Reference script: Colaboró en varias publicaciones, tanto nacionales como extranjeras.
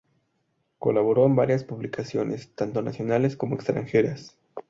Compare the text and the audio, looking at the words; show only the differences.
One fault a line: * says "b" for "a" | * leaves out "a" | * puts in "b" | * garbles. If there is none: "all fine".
all fine